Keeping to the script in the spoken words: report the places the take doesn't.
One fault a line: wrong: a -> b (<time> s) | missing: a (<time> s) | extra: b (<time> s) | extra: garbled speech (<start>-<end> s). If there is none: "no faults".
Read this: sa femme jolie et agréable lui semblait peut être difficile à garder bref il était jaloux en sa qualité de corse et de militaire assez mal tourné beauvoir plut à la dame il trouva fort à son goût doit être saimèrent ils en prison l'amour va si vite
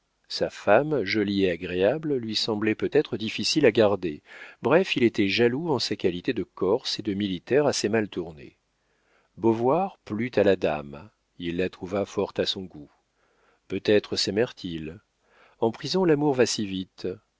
extra: la (11.6 s)
wrong: doit -> peut (13.7 s)